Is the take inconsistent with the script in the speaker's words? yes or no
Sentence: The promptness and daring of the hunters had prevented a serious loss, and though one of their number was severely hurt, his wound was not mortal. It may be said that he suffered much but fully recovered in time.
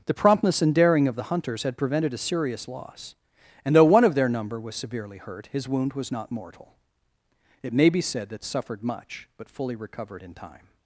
yes